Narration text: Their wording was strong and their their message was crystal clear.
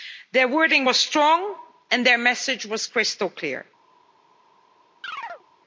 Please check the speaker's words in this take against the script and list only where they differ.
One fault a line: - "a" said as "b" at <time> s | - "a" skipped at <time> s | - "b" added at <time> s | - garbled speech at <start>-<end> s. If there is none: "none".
- "their" skipped at 2.2 s